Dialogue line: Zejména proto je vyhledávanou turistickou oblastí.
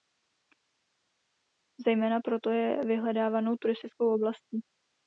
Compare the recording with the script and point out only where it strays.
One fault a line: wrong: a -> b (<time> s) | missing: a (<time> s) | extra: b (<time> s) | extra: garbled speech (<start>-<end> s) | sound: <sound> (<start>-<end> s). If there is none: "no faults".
no faults